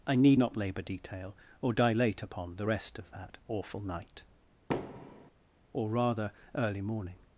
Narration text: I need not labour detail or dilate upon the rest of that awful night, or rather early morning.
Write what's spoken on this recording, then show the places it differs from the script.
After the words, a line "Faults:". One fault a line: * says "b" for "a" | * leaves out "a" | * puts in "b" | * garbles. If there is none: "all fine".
I need not labour detail or dilate upon the rest of that awful night, or rather early morning.
Faults:
all fine